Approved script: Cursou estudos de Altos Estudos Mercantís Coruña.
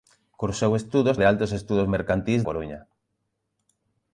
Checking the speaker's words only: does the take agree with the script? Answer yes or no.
yes